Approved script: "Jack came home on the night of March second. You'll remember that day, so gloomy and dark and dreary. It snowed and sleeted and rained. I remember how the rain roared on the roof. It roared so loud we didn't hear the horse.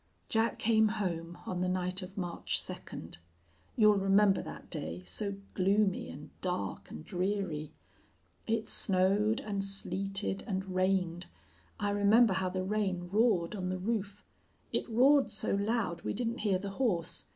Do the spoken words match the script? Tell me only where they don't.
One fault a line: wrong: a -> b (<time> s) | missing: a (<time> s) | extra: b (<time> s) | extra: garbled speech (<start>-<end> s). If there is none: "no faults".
no faults